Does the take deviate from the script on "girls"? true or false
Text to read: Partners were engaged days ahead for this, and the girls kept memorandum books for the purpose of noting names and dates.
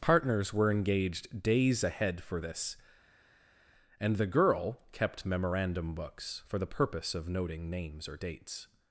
true